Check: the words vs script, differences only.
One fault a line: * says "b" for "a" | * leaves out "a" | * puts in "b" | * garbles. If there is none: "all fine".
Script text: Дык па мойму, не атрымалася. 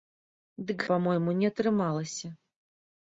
all fine